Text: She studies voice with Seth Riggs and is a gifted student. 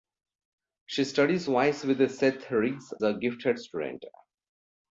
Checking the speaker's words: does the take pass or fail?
fail